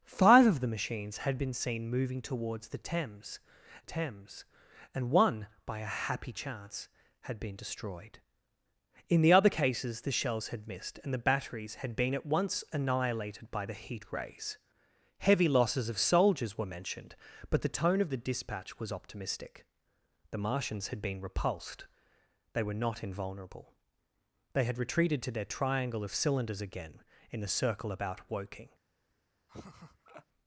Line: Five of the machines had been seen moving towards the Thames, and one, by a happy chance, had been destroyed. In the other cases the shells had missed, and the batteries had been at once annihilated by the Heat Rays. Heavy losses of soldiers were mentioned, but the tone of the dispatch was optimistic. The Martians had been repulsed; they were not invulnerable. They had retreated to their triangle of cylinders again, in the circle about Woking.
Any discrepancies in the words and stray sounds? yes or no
yes